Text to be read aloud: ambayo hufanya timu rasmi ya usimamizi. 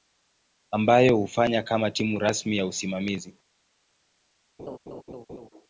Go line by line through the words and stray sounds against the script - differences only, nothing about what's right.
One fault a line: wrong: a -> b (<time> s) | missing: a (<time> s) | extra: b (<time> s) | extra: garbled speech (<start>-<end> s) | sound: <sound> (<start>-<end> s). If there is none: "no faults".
extra: kama (1.6 s)
sound: laugh (4.6-5.5 s)